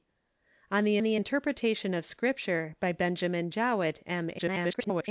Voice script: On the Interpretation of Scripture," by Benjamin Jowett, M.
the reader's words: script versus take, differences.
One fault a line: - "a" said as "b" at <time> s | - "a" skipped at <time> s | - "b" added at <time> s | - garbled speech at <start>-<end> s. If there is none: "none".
- "the" added at 1.0 s
- garbled speech at 4.4-5.1 s